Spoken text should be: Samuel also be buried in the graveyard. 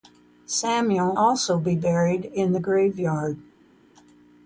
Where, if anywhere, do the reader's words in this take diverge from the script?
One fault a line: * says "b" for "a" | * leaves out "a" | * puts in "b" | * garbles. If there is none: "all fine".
all fine